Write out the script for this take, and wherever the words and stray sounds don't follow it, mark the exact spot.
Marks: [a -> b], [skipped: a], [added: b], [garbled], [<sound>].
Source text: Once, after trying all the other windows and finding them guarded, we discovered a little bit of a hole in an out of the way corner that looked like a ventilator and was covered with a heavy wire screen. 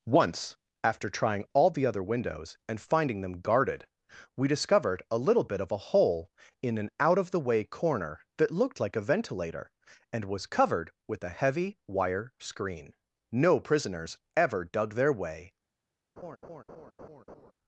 Once, after trying all the other windows and finding them guarded, we discovered a little bit of a hole in an out of the way corner that looked like a ventilator and was covered with a heavy wire screen. [added: No prisoners ever dug their way] [laugh]